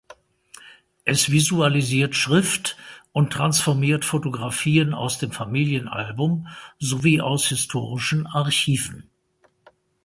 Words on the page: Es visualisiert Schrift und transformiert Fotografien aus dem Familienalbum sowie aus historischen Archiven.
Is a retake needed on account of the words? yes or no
no